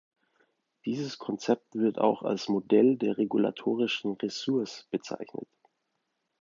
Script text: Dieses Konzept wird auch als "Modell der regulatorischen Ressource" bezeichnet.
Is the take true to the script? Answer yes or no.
yes